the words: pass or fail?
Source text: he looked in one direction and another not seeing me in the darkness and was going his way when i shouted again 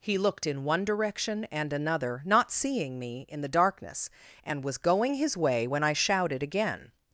pass